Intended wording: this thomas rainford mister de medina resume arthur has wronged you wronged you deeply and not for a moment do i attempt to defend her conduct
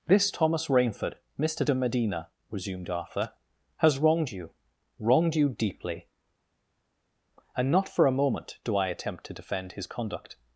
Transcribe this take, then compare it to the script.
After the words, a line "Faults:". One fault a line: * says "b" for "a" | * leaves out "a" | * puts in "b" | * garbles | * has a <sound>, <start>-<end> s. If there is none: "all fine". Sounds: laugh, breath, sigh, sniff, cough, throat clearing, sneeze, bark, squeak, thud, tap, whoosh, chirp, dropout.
this thomas rainford mister de medina resumed arthur has wronged you wronged you deeply and not for a moment do i attempt to defend his conduct
Faults:
* says "resumed" for "resume"
* says "his" for "her"